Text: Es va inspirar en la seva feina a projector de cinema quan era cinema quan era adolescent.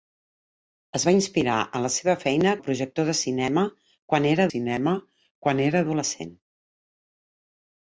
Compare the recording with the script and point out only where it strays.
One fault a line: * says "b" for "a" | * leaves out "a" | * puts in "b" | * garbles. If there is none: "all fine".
all fine